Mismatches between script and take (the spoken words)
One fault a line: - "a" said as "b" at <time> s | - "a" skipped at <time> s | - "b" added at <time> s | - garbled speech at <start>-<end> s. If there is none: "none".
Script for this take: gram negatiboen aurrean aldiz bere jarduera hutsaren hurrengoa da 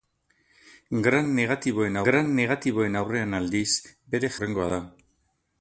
- "gram negatiboen" added at 2.1 s
- "jarduera hutsaren" skipped at 4.3 s